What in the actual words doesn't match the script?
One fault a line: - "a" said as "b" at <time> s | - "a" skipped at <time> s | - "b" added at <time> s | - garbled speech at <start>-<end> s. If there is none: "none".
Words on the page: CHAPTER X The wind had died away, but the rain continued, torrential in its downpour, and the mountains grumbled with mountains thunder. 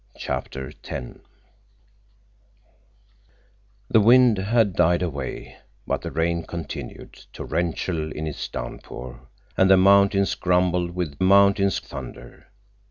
none